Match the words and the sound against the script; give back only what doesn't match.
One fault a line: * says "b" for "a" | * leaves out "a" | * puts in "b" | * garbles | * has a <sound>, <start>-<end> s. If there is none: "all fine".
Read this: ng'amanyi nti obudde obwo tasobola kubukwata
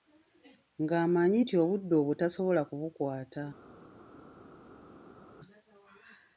all fine